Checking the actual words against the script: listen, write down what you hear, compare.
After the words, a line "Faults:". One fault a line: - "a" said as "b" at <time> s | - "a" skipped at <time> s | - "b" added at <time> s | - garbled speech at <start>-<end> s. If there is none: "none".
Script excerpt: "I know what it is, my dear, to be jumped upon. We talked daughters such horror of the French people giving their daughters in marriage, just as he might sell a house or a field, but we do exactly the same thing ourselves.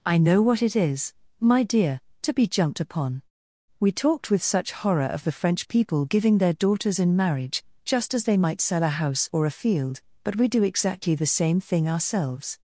"I know what it is, my dear, to be jumped upon. We talked with such horror of the French people giving their daughters in marriage, just as they might sell a house or a field, but we do exactly the same thing ourselves.
Faults:
- "daughters" said as "with" at 4.3 s
- "he" said as "they" at 8.2 s